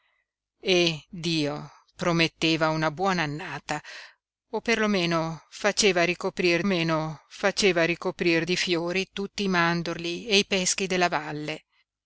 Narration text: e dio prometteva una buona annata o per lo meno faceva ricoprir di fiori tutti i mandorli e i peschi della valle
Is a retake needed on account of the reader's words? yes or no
yes